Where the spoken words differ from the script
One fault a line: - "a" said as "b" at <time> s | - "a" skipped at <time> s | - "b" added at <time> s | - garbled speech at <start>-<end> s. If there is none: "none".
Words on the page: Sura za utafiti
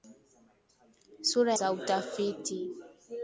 none